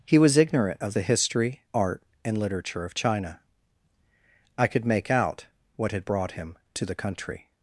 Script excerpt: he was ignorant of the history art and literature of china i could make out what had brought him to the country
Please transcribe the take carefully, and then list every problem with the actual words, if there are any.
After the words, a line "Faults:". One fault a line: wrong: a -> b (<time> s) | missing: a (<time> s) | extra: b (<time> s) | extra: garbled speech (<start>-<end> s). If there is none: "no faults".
he was ignorant of the history art and literature of china i could make out what had brought him to the country
Faults:
no faults